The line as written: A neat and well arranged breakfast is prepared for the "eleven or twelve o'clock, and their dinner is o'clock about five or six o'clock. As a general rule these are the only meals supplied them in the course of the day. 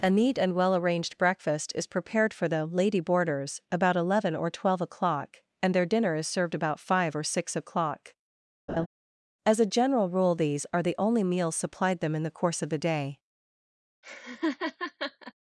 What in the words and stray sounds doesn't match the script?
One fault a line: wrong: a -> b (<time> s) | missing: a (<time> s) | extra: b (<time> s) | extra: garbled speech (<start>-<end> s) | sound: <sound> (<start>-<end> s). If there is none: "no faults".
extra: lady boarders about (2.6 s)
wrong: o'clock -> served (6.3 s)
sound: laugh (8.7-8.9 s)
sound: laugh (14.0-15.3 s)